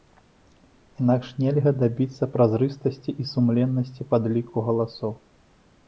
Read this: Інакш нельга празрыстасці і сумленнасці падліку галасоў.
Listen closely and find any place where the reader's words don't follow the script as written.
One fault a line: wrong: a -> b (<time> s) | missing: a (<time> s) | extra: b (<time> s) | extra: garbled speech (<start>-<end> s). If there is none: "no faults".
extra: дабіцца (1.8 s)